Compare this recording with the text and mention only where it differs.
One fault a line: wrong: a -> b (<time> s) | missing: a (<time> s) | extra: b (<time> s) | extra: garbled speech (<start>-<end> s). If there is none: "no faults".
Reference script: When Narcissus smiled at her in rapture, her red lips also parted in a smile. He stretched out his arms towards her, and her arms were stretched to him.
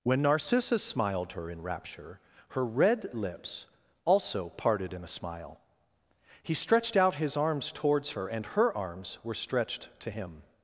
missing: at (1.3 s)